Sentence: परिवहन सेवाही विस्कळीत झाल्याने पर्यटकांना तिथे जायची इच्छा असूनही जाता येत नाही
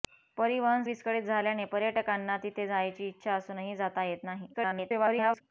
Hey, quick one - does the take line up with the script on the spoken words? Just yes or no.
no